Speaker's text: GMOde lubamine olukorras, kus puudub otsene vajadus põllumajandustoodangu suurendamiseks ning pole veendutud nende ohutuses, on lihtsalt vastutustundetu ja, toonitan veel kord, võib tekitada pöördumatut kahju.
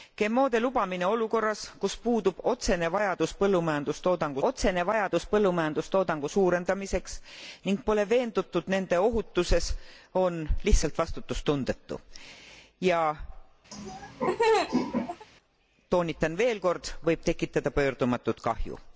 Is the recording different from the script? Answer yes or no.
yes